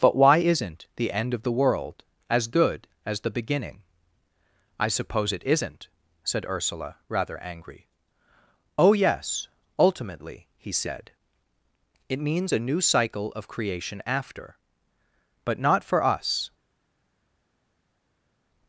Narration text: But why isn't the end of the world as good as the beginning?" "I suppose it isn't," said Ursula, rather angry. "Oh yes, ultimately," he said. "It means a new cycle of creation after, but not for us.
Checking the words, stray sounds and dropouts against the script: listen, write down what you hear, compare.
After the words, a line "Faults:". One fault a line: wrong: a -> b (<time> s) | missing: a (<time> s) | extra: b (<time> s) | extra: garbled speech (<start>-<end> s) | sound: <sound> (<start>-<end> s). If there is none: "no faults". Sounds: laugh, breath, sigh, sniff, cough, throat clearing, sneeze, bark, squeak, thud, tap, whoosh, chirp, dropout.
But why isn't the end of the world as good as the beginning?" "I suppose it isn't," said Ursula, rather angry. "Oh yes, ultimately," he said. "It means a new cycle of creation after, but not for us.
Faults:
no faults